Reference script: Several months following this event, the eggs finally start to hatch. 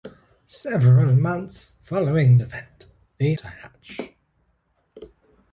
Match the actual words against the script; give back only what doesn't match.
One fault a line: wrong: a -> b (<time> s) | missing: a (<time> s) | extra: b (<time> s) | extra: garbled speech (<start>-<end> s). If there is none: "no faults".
missing: this (2.4 s)
missing: eggs finally start (3.4 s)